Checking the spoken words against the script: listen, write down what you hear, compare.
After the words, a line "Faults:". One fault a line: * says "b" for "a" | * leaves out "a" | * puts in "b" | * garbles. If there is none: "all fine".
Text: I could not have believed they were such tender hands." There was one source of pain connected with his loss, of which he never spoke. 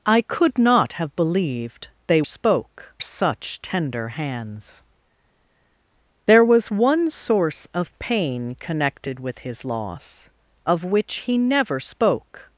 I could not have believed they spoke such tender hands." There was one source of pain connected with his loss, of which he never spoke.
Faults:
* says "spoke" for "were"